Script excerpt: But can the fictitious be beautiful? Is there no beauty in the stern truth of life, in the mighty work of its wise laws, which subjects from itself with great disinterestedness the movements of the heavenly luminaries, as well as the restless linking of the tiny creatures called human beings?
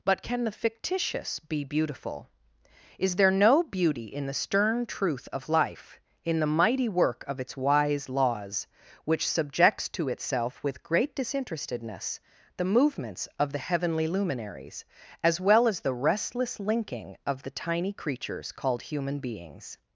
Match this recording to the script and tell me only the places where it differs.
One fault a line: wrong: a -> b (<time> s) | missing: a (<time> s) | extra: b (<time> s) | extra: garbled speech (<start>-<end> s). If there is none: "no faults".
wrong: from -> to (9.9 s)